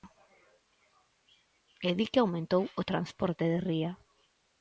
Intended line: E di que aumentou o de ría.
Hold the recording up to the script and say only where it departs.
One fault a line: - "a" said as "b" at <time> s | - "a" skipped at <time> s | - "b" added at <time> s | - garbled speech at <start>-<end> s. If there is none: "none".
- "transporte" added at 2.9 s